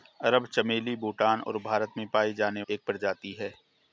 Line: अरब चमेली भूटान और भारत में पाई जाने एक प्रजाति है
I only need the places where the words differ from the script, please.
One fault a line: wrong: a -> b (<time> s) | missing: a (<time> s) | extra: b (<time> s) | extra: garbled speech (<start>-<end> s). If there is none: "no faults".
no faults